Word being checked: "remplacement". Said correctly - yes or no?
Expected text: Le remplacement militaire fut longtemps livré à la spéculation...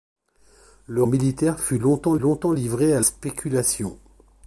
no